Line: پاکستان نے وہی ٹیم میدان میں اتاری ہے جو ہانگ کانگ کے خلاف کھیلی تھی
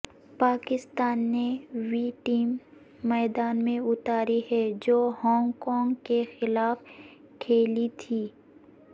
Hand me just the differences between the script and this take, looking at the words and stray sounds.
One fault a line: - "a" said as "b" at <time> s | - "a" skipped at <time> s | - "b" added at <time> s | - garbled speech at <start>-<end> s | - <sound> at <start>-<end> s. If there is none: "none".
none